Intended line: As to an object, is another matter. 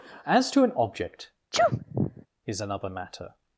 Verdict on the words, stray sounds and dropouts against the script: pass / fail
fail